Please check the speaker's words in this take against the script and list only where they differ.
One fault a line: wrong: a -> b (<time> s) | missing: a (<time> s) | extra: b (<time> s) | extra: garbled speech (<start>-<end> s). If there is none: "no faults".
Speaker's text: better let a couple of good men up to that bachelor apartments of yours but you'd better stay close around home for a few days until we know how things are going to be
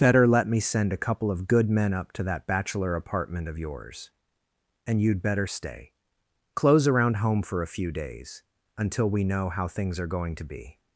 extra: me send (0.5 s)
wrong: apartments -> apartment (3.0 s)
wrong: but -> and (4.9 s)